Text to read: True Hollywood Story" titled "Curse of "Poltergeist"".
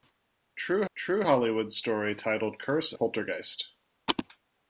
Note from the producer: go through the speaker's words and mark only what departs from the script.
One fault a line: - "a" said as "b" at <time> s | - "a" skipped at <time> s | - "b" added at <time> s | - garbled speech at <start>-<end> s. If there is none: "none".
- "true" added at 0.9 s
- "of" skipped at 2.9 s